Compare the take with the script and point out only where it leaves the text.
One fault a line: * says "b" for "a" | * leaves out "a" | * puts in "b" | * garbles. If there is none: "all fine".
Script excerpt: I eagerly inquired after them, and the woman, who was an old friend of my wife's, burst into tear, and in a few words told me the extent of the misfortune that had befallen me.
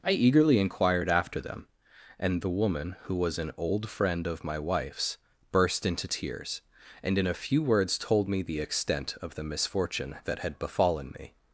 * says "tears" for "tear"